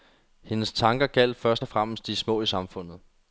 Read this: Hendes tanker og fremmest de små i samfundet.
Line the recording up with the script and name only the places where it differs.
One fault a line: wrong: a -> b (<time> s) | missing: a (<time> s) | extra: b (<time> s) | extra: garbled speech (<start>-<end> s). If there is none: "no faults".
extra: gjaldt først (1.1 s)